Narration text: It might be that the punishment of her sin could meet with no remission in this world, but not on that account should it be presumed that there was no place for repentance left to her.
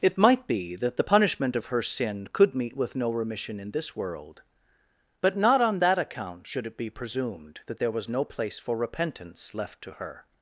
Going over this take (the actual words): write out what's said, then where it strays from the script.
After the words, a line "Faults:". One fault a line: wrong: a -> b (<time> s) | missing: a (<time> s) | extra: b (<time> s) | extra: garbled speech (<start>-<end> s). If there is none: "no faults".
It might be that the punishment of her sin could meet with no remission in this world, but not on that account should it be presumed that there was no place for repentance left to her.
Faults:
no faults